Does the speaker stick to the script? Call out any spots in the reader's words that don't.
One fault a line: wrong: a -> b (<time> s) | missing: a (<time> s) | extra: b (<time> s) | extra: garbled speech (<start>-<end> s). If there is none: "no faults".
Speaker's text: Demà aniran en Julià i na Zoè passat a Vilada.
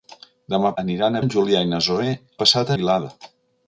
no faults